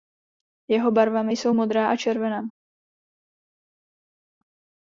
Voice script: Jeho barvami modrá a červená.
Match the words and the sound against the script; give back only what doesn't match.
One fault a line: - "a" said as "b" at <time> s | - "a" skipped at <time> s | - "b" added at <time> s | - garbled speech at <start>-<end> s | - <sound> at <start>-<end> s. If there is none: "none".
- "jsou" added at 1.3 s